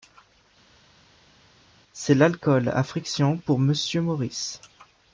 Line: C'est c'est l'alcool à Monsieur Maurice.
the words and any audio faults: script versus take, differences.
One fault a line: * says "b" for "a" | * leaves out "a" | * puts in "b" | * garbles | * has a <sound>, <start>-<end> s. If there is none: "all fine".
* leaves out "c'est"
* puts in "frictions pour"